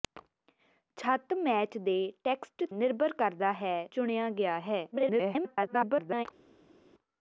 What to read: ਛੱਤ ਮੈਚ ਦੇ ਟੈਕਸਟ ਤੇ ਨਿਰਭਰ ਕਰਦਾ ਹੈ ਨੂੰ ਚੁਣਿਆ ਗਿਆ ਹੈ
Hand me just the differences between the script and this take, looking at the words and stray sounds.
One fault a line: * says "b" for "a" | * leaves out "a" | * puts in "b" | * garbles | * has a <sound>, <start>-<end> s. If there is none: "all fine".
* leaves out "ਤੇ"
* leaves out "ਨੂੰ"
* garbles